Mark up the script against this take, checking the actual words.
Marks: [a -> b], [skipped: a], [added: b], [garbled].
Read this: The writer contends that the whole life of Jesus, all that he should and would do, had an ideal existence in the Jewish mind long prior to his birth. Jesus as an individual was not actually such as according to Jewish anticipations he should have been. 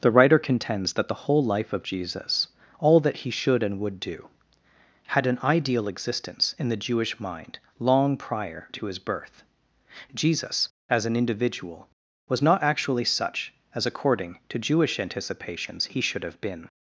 The writer contends that the whole life of Jesus, all that he should and would do, had an ideal existence in the Jewish mind long prior to his birth. Jesus as an individual was not actually such as according to Jewish anticipations he should have been.